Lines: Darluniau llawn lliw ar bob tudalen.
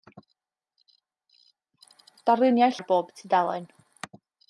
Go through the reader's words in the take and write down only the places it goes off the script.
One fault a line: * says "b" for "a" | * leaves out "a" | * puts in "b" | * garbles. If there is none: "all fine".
* leaves out "llawn lliw"